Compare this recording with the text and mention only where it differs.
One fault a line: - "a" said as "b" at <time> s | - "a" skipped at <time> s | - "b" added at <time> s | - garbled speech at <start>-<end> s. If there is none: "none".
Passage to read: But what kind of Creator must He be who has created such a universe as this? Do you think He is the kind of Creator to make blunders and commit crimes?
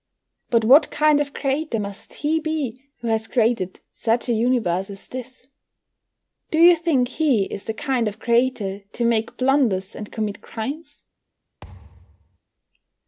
none